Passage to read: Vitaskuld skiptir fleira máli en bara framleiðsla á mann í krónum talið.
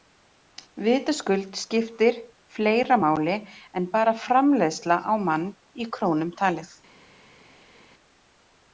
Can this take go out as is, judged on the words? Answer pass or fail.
pass